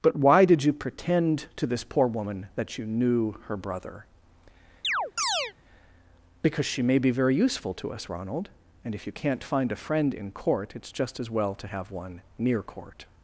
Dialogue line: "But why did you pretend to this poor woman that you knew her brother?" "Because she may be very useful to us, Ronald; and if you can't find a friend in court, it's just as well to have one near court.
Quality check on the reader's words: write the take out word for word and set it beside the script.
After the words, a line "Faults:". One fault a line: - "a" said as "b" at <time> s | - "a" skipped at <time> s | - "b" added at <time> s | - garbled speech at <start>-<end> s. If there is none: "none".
"But why did you pretend to this poor woman that you knew her brother?" "Because she may be very useful to us, Ronald; and if you can't find a friend in court, it's just as well to have one near court.
Faults:
none